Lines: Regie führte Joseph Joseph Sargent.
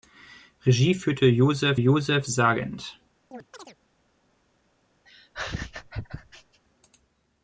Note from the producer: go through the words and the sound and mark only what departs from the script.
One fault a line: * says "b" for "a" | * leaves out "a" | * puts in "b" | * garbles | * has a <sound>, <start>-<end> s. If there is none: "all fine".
* has a chirp, 3.3-3.8 s
* has a laugh, 5.1-6.6 s